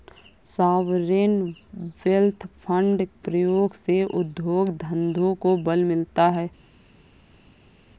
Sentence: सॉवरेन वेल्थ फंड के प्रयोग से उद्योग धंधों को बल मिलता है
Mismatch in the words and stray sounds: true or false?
true